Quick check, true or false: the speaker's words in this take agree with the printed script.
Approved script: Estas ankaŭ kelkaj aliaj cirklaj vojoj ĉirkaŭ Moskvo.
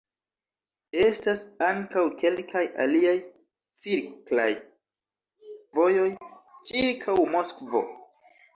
true